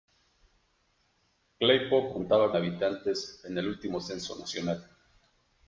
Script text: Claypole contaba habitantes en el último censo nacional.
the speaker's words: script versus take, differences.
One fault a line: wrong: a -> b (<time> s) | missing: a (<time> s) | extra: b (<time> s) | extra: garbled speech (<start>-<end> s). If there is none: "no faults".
no faults